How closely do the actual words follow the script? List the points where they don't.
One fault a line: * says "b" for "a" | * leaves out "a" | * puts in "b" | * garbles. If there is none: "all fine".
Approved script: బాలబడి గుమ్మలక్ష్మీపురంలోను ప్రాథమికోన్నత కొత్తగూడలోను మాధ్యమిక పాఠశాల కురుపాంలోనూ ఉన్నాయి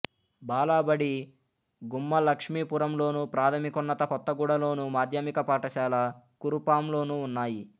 all fine